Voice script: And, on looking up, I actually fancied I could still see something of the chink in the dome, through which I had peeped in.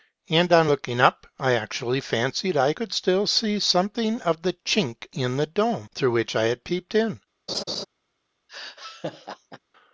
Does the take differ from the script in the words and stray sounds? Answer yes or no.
yes